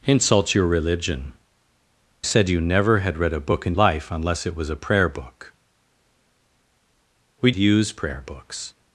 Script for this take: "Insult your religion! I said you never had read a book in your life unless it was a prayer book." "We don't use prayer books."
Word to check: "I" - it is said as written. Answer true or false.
false